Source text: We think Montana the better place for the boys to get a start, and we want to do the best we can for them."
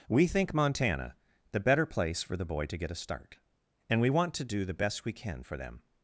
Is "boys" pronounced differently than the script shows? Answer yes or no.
yes